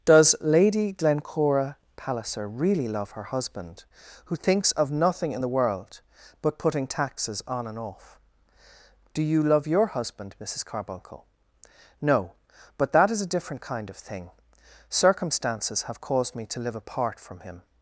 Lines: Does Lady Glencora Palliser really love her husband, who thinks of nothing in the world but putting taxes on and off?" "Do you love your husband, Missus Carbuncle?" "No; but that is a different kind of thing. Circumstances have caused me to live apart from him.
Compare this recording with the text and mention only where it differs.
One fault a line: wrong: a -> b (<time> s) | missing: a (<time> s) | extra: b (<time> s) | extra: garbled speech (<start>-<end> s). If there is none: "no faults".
no faults